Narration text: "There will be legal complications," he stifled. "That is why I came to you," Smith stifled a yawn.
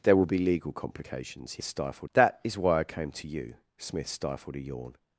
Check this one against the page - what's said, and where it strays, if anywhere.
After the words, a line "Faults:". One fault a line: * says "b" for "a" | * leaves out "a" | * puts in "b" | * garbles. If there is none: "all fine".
"There will be legal complications," he stifled. "That is why I came to you," Smith stifled a yawn.
Faults:
all fine